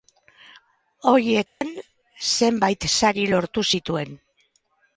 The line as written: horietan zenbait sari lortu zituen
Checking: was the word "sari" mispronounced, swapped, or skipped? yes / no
no